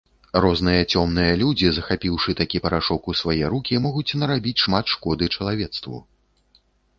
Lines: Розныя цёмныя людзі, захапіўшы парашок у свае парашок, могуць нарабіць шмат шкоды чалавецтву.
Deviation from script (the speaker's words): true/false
true